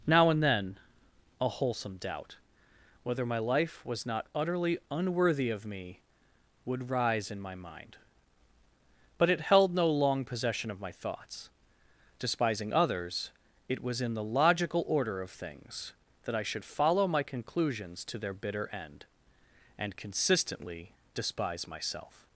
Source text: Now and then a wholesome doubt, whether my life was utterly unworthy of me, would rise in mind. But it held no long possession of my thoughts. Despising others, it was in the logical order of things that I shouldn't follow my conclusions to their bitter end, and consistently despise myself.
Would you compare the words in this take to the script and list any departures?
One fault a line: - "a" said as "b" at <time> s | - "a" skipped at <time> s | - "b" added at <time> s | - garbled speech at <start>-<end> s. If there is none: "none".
- "not" added at 4.0 s
- "my" added at 7.4 s
- "shouldn't" said as "should" at 16.4 s